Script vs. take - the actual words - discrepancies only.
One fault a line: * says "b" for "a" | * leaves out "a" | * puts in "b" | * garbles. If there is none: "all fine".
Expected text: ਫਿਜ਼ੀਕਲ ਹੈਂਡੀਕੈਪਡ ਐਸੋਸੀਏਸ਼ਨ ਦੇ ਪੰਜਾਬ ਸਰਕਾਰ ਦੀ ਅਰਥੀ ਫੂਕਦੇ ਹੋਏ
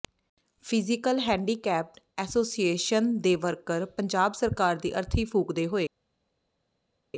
* puts in "ਵਰਕਰ"